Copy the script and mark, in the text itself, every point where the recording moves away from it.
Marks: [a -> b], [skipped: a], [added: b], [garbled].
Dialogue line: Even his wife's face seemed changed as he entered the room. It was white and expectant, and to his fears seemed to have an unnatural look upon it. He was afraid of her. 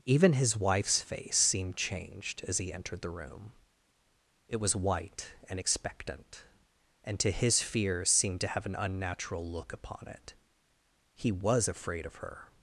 Even his wife's face seemed changed as he entered the room. It was white and expectant, and to his fears seemed to have an unnatural look upon it. He was afraid of her.